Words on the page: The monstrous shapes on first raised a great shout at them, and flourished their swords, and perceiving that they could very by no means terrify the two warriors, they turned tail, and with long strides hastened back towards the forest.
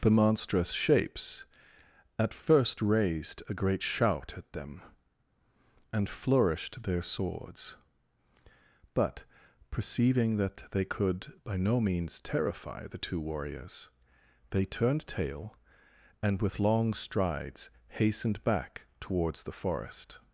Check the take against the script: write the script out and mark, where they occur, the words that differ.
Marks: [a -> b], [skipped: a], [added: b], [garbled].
The monstrous shapes [on -> at] first raised a great shout at them, and flourished their swords, [and -> but] perceiving that they could [skipped: very] by no means terrify the two warriors, they turned tail, and with long strides hastened back towards the forest.